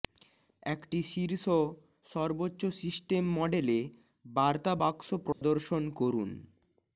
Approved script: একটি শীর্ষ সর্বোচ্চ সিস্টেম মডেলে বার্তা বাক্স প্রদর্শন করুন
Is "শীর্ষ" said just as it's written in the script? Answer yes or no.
yes